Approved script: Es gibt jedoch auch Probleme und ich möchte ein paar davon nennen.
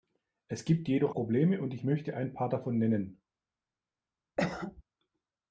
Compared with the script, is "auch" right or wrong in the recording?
wrong